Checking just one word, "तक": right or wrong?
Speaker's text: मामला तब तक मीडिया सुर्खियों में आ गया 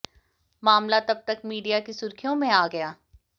right